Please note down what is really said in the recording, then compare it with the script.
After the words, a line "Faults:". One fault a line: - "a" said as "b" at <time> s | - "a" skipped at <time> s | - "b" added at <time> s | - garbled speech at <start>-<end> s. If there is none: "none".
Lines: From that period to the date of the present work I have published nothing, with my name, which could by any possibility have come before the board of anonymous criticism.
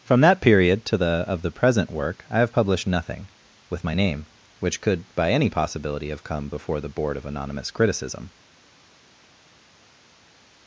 From that period to the of the present work I have published nothing, with my name, which could by any possibility have come before the board of anonymous criticism.
Faults:
- "date" skipped at 1.2 s